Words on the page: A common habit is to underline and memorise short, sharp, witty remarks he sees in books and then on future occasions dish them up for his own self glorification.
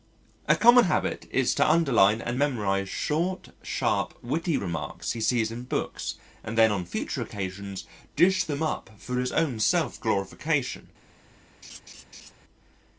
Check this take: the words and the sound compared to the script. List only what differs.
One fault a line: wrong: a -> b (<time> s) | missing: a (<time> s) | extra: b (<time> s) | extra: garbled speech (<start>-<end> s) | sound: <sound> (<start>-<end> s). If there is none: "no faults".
sound: laugh (11.6-12.3 s)